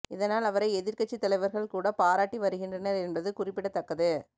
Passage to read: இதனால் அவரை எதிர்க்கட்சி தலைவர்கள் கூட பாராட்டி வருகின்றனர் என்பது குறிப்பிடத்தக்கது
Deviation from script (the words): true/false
false